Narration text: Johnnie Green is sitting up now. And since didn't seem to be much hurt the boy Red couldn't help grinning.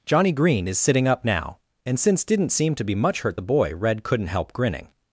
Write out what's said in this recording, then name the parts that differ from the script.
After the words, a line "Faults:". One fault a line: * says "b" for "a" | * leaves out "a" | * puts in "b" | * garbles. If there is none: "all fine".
Johnnie Green is sitting up now. And since didn't seem to be much hurt the boy Red couldn't help grinning.
Faults:
all fine